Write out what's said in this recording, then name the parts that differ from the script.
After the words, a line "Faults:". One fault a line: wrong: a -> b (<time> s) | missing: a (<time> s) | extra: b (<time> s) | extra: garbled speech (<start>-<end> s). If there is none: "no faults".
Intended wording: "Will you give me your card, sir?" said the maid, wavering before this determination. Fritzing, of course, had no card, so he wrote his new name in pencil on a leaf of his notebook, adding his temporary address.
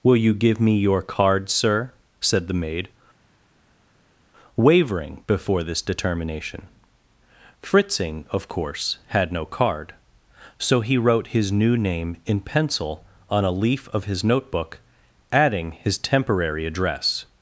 "Will you give me your card, sir?" said the maid, wavering before this determination. Fritzing, of course, had no card, so he wrote his new name in pencil on a leaf of his notebook, adding his temporary address.
Faults:
no faults